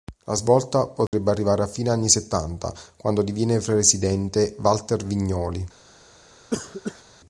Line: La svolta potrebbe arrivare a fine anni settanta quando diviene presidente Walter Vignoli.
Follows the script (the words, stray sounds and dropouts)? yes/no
no